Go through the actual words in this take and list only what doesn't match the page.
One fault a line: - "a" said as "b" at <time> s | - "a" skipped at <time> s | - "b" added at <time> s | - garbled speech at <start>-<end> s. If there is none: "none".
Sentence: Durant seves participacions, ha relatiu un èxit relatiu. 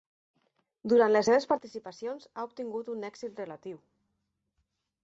- "les" added at 1.1 s
- "relatiu" said as "obtingut" at 2.5 s